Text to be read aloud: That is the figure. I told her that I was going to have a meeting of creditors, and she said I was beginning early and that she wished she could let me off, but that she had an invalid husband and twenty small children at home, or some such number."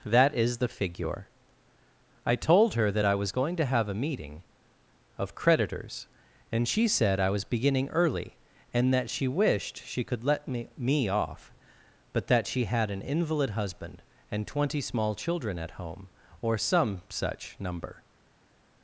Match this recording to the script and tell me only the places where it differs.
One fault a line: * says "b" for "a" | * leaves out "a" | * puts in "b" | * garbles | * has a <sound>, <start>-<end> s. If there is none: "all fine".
* puts in "me"